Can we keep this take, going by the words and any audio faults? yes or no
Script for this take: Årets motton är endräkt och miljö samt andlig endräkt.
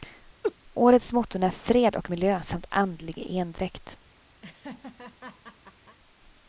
no